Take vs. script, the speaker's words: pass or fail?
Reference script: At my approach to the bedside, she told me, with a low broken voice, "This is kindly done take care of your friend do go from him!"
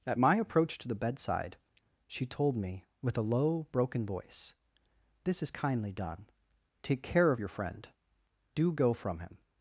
pass